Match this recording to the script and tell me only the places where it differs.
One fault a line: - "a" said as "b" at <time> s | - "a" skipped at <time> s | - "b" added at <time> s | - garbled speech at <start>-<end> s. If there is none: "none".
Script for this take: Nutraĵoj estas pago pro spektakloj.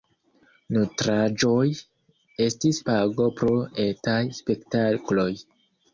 - "estas" said as "estis" at 2.5 s
- "etaj" added at 3.9 s